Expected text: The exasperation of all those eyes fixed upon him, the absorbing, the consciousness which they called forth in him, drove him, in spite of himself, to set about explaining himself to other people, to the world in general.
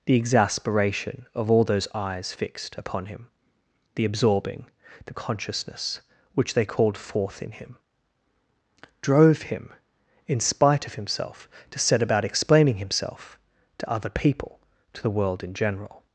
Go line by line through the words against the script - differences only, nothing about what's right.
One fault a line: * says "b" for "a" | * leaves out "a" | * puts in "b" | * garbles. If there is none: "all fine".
all fine